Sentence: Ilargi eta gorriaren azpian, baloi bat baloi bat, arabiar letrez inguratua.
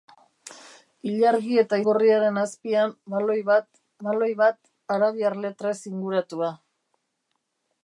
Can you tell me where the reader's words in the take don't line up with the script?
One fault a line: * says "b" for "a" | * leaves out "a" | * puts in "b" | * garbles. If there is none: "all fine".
all fine